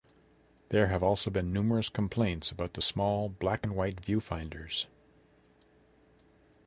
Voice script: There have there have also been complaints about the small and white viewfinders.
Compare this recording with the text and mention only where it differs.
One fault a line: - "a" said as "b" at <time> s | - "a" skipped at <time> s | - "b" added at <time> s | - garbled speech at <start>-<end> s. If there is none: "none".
- "there have" skipped at 1.0 s
- "numerous" added at 1.5 s
- "black" added at 3.3 s